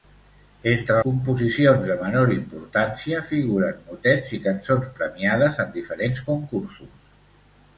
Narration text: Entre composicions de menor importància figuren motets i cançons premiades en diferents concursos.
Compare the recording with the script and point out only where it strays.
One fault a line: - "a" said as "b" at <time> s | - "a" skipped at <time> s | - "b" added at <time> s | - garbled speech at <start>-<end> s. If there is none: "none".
none